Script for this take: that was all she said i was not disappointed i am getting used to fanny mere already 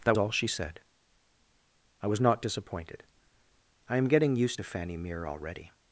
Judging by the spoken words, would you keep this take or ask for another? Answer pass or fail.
fail